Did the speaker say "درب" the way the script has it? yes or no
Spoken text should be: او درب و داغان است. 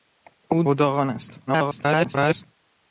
no